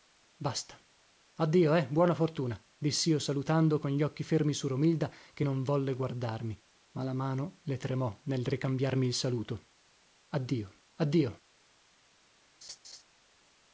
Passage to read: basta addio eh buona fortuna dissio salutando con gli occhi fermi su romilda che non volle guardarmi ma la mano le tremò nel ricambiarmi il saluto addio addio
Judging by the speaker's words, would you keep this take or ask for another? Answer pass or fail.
pass